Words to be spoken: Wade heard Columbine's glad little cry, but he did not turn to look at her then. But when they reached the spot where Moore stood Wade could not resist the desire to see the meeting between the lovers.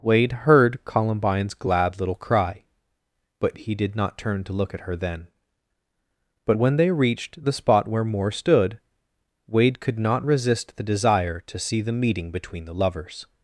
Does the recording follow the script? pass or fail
pass